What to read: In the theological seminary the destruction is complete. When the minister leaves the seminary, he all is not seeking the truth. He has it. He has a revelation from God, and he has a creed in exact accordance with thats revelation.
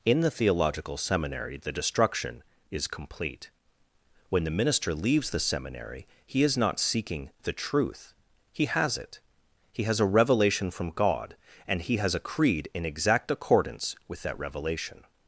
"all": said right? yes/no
no